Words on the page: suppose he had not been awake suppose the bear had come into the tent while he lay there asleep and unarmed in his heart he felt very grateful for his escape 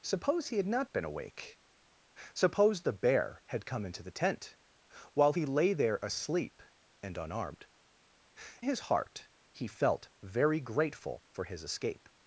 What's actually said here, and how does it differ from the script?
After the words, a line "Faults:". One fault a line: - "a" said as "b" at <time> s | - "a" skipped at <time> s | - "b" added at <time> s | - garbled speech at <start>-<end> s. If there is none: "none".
suppose he had not been awake suppose the bear had come into the tent while he lay there asleep and unarmed his heart he felt very grateful for his escape
Faults:
- "in" skipped at 7.7 s